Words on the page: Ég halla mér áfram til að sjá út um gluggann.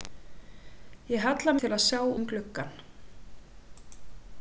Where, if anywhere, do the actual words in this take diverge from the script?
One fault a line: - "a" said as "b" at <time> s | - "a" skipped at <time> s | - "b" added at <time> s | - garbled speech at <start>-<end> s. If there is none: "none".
- "mér áfram" skipped at 1.5 s
- "út" skipped at 2.0 s